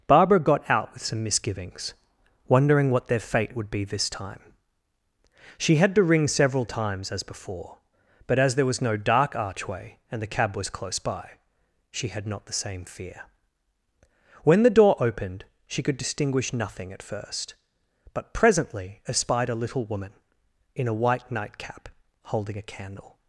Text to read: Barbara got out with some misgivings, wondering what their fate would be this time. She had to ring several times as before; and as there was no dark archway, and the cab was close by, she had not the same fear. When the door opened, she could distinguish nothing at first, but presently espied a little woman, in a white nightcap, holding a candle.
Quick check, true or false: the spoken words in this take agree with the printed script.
false